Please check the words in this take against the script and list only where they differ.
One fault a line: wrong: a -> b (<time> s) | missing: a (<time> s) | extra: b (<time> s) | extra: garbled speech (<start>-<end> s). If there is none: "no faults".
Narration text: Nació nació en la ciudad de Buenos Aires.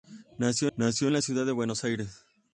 no faults